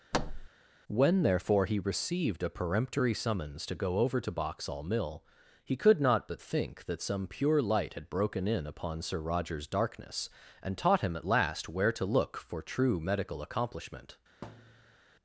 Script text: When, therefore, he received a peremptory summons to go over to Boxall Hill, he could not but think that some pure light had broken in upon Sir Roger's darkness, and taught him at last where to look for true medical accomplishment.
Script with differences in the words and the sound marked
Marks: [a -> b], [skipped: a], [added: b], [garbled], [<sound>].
[thud] When, therefore, he received a peremptory summons to go over to Boxall [Hill, -> Mill] he could not but think that some pure light had broken in upon Sir Roger's darkness, and taught him at last where to look for true medical accomplishment. [thud]